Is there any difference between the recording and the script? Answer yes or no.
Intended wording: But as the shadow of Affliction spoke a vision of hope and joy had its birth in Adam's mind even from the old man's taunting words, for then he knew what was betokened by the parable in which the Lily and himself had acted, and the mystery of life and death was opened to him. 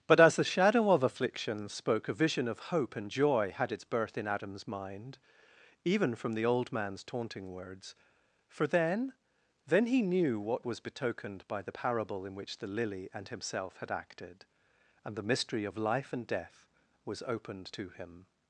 yes